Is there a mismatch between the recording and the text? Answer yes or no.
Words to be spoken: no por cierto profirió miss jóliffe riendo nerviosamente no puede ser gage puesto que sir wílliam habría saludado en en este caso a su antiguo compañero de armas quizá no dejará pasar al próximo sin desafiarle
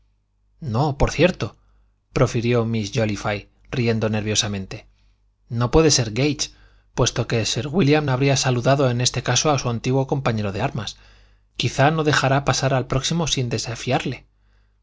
yes